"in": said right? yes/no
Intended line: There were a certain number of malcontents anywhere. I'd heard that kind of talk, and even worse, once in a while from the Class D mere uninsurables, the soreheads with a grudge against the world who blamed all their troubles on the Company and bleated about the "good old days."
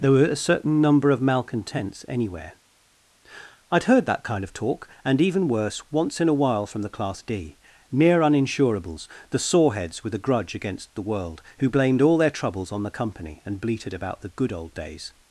yes